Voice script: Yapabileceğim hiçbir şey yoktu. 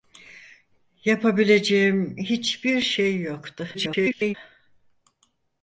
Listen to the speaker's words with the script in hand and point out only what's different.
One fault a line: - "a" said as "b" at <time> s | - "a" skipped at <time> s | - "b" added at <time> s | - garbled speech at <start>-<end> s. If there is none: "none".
- garbled speech at 3.7-4.4 s